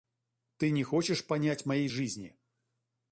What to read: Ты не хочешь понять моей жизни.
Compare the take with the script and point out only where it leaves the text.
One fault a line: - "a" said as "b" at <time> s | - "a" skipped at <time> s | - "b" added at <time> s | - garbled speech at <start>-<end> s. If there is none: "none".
none